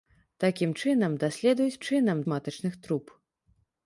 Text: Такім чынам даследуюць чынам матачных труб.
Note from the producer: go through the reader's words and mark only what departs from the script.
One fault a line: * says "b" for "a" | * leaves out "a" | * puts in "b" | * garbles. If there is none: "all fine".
all fine